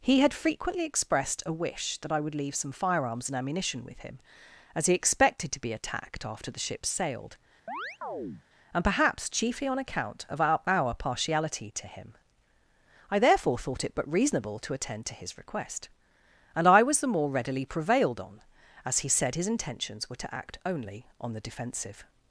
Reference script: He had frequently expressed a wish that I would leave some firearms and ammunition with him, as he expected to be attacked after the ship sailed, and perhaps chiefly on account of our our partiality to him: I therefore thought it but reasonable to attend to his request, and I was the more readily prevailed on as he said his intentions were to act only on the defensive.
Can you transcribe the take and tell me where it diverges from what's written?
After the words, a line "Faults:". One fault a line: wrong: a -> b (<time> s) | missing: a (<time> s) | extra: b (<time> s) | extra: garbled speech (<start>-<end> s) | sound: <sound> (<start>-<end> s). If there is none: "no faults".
He had frequently expressed a wish that I would leave some firearms and ammunition with him, as he expected to be attacked after the ship sailed, and perhaps chiefly on account of our our partiality to him: I therefore thought it but reasonable to attend to his request, and I was the more readily prevailed on as he said his intentions were to act only on the defensive.
Faults:
sound: chirp (7.7-8.4 s)